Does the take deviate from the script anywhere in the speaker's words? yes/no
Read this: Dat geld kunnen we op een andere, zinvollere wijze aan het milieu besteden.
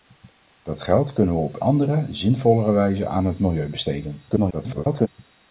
yes